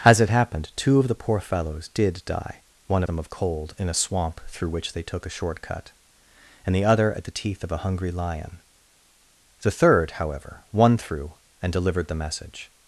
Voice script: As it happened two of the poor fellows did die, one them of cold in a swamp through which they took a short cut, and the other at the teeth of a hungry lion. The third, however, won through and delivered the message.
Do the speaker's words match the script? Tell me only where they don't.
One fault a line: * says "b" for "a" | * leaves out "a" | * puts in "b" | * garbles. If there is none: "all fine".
all fine